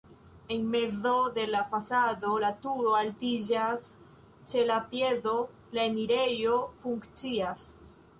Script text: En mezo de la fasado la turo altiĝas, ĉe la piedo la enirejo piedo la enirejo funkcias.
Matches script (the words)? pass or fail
fail